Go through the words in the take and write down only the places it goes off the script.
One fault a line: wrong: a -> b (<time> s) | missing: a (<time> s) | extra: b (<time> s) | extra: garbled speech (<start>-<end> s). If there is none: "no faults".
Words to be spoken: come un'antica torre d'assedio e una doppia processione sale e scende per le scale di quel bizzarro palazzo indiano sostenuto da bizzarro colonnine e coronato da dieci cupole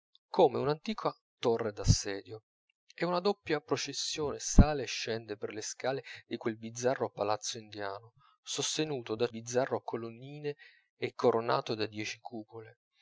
no faults